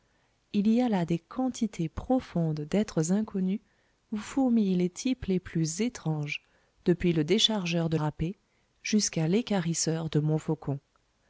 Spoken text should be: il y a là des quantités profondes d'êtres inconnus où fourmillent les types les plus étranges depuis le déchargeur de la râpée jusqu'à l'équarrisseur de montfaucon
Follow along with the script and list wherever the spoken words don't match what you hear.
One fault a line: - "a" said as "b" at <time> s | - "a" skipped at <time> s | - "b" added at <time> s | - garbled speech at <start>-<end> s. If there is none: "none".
- "la" skipped at 8.0 s